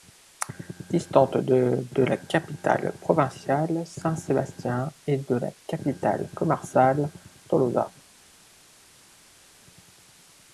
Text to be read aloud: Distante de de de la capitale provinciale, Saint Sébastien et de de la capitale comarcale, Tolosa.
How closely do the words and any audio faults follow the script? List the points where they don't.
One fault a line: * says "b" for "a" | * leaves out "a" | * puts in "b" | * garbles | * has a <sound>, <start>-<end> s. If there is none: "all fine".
* leaves out "de"
* leaves out "de"